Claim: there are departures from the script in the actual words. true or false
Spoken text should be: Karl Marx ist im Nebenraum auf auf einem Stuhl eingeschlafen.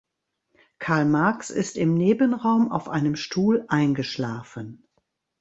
true